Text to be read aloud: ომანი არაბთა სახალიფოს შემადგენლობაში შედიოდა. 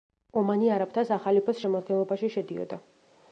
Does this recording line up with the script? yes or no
yes